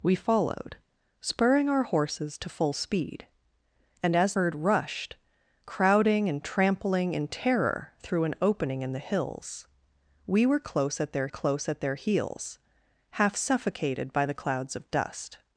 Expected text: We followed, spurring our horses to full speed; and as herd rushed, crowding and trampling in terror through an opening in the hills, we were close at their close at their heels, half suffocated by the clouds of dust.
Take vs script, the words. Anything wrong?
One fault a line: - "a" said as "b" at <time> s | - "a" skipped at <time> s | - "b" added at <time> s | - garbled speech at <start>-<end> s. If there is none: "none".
none